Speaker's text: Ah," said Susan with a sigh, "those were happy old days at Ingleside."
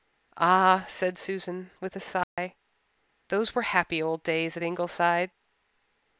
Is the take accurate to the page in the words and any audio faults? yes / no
no